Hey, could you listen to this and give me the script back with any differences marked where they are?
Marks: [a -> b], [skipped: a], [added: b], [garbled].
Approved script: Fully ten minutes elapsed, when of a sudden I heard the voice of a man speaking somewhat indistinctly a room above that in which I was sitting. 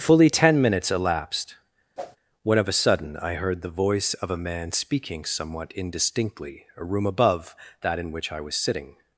Fully ten minutes elapsed, when of a sudden I heard the voice of a man speaking somewhat indistinctly a room above that in which I was sitting.